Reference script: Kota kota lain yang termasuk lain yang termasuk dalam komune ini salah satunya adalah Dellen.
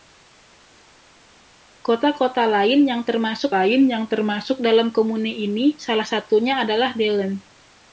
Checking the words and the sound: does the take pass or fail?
pass